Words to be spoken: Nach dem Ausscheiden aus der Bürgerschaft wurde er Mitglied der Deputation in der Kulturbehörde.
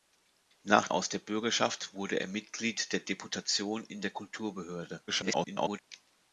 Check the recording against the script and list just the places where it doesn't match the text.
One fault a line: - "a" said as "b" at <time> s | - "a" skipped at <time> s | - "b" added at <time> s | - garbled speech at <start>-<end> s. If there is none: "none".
- "dem Ausscheiden" skipped at 0.9 s
- garbled speech at 5.1-5.8 s